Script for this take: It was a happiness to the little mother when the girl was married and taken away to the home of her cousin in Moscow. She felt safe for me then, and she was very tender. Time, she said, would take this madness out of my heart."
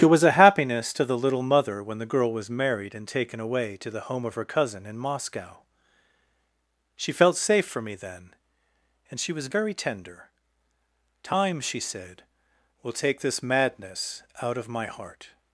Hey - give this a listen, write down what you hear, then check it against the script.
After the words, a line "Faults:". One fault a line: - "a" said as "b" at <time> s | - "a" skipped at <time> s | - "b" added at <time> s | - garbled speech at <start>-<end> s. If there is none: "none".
It was a happiness to the little mother when the girl was married and taken away to the home of her cousin in Moscow. She felt safe for me then, and she was very tender. Time, she said, will take this madness out of my heart."
Faults:
- "would" said as "will" at 12.8 s